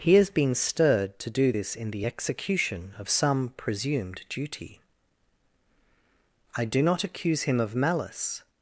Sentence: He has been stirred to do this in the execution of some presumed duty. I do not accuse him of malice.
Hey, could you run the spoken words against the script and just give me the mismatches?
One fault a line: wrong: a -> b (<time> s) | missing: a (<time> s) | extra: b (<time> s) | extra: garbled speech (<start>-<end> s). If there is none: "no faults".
no faults